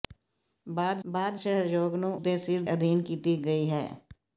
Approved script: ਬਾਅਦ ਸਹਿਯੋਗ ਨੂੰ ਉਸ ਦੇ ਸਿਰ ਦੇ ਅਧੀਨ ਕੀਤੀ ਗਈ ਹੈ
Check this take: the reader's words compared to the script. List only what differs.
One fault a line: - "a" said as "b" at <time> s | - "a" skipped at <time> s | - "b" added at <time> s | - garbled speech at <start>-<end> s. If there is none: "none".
- "ਬਾਅਦ" added at 1.0 s
- "ਉਸ" skipped at 2.1 s
- "ਦੇ" skipped at 2.6 s